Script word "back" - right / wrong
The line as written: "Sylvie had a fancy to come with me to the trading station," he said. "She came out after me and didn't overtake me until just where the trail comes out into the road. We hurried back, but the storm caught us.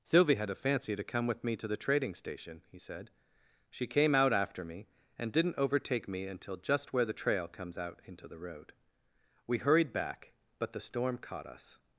right